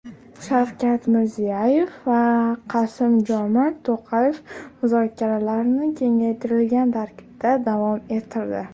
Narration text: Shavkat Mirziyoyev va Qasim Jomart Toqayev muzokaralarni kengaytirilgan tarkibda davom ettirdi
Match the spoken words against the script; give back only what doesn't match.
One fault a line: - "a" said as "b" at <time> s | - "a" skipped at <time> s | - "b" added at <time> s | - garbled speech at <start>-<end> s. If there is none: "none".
none